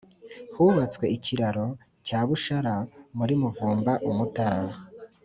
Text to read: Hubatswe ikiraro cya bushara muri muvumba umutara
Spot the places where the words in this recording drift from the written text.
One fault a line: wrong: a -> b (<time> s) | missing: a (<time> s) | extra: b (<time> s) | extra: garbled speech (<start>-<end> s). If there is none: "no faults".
no faults